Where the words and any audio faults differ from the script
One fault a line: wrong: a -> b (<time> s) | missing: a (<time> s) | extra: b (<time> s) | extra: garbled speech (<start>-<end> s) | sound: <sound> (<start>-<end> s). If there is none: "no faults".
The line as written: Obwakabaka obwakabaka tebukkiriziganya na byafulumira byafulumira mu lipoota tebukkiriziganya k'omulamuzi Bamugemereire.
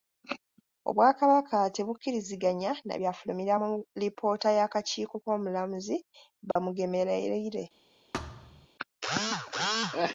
missing: obwakabaka (1.6 s)
missing: byafulumira (3.5 s)
wrong: tebukkiriziganya -> y'akakiiko (4.6 s)
sound: dropout (6.5-6.6 s)
sound: thud (8.1-8.7 s)